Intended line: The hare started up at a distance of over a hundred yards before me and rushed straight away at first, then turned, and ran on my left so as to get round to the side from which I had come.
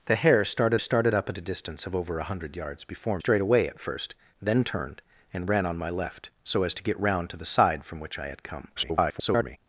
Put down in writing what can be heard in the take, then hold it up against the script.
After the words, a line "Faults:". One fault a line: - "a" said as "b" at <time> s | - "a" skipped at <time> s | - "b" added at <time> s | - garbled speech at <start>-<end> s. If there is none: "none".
The hare started started up at a distance of over a hundred yards before straight away at first, then turned, and ran on my left so as to get round to the side from which I had come. [garbled]
Faults:
- "started" added at 0.8 s
- "me and rushed" skipped at 3.2 s
- garbled speech at 8.8-9.6 s